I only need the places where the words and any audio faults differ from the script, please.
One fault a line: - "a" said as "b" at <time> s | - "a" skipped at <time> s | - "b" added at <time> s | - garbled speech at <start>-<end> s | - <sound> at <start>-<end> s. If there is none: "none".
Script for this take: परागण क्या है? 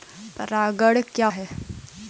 none